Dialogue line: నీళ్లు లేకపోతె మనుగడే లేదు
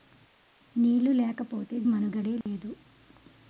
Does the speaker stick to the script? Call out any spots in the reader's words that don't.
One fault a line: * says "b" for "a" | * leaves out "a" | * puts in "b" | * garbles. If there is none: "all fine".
all fine